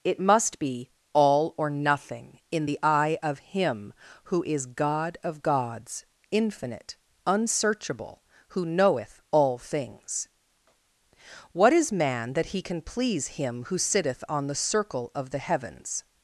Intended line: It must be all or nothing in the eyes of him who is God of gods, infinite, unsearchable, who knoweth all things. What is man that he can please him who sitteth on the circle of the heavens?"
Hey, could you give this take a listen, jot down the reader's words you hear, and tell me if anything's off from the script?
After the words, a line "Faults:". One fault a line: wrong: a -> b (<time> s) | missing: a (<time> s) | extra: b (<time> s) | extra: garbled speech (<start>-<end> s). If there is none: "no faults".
It must be all or nothing in the eye of him who is God of gods, infinite, unsearchable, who knoweth all things. What is man that he can please him who sitteth on the circle of the heavens?"
Faults:
wrong: eyes -> eye (2.8 s)